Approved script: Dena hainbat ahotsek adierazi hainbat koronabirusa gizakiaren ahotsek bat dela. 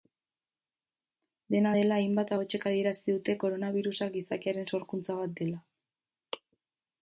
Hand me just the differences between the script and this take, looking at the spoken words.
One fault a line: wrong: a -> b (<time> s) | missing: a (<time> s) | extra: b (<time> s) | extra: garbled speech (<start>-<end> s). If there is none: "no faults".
extra: dela (1.8 s)
wrong: hainbat -> dute (3.2 s)
wrong: ahotsek -> sorkuntza (4.8 s)